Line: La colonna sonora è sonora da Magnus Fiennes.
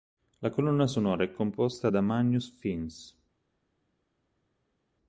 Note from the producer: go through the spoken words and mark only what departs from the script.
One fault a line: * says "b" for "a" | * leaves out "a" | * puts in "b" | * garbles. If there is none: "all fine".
* says "composta" for "sonora"